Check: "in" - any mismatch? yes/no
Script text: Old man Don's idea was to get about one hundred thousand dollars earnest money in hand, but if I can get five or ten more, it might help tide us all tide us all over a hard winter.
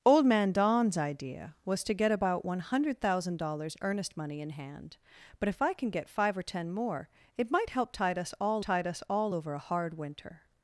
no